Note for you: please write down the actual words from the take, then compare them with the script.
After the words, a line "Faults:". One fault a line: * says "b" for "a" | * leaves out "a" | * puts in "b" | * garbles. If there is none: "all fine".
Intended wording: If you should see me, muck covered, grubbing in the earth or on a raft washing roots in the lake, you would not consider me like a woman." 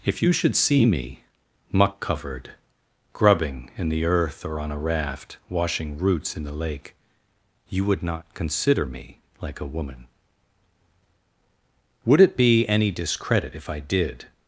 If you should see me, muck covered, grubbing in the earth or on a raft washing roots in the lake, you would not consider me like a woman." "Would it be any discredit if I did
Faults:
* puts in "Would it be any discredit if I did"